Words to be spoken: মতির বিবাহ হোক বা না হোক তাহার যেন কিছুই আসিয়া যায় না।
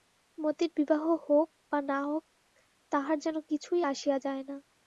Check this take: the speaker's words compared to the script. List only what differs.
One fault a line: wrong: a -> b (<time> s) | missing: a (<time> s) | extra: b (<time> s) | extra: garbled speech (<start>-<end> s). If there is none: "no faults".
no faults